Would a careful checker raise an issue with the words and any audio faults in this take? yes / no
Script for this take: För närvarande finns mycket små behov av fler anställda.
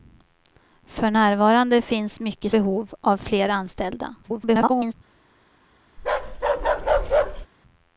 yes